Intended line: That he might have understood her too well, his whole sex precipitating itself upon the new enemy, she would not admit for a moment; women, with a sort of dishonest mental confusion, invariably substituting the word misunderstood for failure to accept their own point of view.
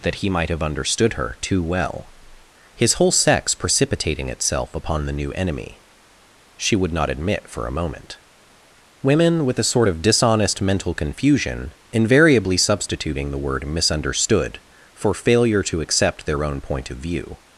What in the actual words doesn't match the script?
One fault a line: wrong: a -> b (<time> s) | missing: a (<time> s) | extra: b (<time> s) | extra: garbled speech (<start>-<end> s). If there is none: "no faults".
no faults